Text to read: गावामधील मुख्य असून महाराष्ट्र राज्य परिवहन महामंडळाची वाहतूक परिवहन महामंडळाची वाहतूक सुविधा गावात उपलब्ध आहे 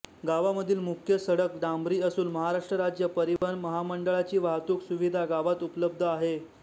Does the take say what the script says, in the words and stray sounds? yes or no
no